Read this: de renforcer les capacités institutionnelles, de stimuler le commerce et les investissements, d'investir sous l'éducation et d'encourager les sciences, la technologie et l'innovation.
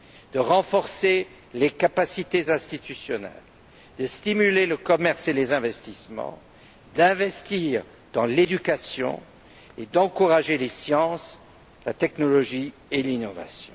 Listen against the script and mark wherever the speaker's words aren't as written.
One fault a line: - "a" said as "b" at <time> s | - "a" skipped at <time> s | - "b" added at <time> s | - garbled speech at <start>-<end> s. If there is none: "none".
- "sous" said as "dans" at 8.1 s